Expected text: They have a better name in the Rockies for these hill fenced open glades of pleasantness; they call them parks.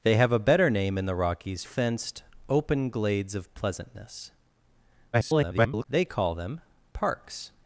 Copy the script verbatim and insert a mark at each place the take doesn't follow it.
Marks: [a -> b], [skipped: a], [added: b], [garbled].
They have a better name in the Rockies [skipped: for these hill] fenced open glades of pleasantness; [garbled] they call them parks.